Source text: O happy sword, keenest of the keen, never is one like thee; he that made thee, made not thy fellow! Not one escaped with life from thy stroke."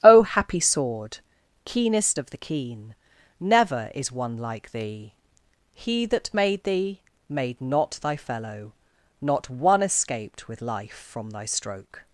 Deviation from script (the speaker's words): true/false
false